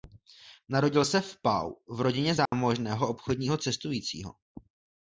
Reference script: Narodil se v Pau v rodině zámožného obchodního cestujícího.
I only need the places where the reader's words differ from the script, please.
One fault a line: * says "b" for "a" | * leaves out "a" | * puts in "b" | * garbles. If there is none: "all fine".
all fine